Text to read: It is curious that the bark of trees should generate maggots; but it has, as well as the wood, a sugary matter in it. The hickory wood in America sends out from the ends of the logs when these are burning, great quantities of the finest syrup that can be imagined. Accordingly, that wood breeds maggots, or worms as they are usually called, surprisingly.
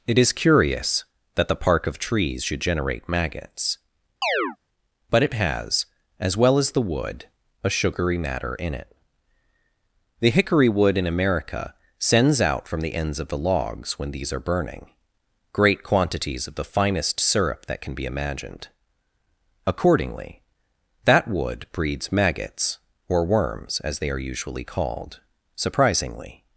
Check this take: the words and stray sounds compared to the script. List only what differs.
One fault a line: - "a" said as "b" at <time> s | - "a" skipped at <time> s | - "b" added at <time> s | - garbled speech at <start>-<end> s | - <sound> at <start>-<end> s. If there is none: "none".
- "bark" said as "park" at 1.6 s
- chirp at 4.2-4.6 s